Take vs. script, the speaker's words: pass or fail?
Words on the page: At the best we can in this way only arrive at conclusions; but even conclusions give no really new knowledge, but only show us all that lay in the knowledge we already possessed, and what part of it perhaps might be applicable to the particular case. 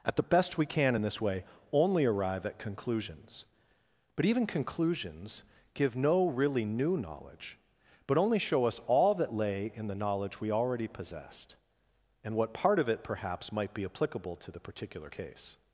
pass